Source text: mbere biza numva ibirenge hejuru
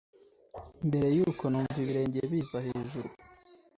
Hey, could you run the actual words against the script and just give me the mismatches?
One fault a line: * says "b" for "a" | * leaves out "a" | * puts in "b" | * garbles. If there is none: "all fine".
* says "yuko" for "biza"
* puts in "biza"